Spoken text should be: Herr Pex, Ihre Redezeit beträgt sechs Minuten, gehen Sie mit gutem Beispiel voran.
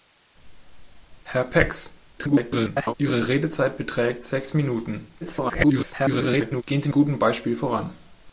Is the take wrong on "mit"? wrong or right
wrong